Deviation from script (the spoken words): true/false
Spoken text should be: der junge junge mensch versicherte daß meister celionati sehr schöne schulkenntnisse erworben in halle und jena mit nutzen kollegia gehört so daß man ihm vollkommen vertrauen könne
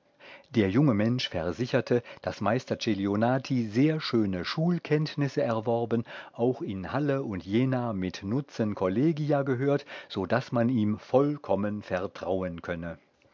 true